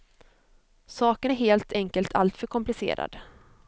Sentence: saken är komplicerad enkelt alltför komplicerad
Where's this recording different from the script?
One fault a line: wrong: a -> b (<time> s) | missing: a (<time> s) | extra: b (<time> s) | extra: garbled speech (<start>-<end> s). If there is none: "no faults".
wrong: komplicerad -> helt (1.3 s)